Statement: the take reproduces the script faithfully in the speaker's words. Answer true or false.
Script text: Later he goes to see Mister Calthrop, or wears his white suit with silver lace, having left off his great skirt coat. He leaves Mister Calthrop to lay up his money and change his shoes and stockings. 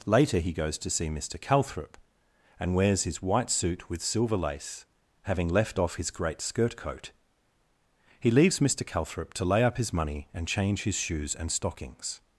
false